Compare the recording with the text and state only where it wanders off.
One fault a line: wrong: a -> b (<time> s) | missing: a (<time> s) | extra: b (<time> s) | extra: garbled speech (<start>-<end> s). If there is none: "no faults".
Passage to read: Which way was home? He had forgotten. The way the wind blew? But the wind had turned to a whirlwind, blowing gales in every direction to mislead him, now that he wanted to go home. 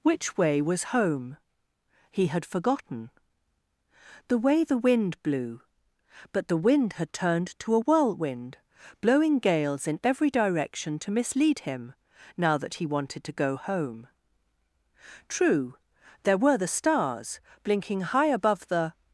extra: True there were the stars blinking high above the (15.3 s)